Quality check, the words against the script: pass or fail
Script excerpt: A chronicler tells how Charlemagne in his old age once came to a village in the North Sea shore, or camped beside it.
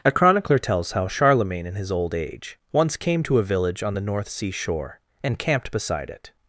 fail